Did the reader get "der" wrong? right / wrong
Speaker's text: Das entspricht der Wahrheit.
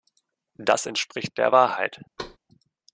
right